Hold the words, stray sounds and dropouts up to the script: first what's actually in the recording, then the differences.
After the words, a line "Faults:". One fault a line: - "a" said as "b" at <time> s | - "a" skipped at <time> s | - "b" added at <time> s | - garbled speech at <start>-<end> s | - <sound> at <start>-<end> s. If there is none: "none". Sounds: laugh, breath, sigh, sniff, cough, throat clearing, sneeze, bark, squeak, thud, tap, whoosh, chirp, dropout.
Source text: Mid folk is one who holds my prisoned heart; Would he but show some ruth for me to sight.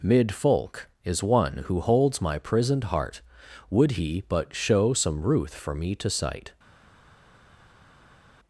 Mid folk is one who holds my prisoned heart; Would he but show some ruth for me to sight.
Faults:
none